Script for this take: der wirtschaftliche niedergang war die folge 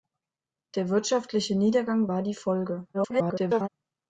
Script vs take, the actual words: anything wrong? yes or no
yes